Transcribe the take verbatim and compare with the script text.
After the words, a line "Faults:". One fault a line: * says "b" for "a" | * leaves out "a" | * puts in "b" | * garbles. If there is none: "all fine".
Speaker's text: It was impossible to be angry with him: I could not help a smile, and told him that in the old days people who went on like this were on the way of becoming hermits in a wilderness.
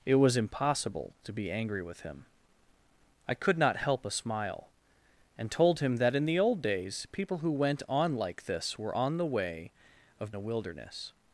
It was impossible to be angry with him: I could not help a smile, and told him that in the old days people who went on like this were on the way of a wilderness.
Faults:
* leaves out "becoming hermits in"